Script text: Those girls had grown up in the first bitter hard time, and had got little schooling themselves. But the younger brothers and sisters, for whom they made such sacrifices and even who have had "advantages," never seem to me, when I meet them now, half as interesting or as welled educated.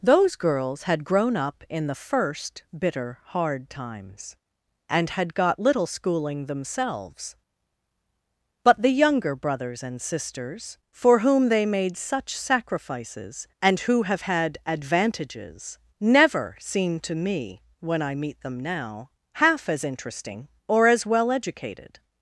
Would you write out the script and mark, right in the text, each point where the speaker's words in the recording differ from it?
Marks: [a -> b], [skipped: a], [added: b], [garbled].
Those girls had grown up in the first bitter hard [time, -> times] and had got little schooling themselves. But the younger brothers and sisters, for whom they made such sacrifices and [skipped: even] who have had "advantages," never seem to me, when I meet them now, half as interesting or as [welled -> well] educated.